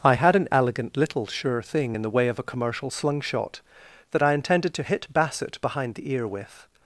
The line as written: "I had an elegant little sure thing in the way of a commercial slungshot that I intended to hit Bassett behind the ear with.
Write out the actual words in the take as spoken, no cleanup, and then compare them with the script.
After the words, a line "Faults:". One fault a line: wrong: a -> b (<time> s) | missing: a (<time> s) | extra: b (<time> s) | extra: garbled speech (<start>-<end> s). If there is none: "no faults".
"I had an elegant little sure thing in the way of a commercial slungshot that I intended to hit Bassett behind the ear with.
Faults:
no faults